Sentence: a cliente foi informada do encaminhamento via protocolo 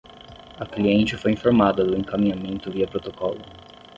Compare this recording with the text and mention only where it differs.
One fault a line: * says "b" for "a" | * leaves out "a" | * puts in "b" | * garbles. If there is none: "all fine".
all fine